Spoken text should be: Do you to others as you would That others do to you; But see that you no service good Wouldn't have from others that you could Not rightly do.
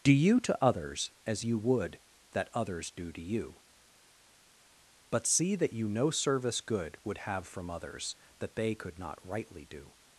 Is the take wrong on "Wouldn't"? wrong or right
wrong